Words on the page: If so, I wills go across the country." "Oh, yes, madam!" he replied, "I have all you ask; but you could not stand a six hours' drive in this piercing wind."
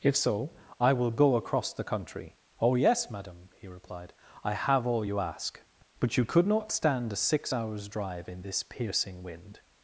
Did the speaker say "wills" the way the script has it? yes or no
no